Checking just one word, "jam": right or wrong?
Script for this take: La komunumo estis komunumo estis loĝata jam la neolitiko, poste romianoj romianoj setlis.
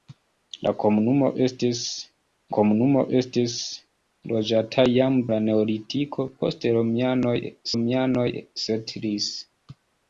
right